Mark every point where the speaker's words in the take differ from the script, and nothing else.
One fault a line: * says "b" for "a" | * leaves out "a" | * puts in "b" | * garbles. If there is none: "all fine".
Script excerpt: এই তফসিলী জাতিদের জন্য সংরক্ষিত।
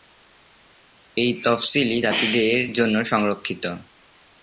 all fine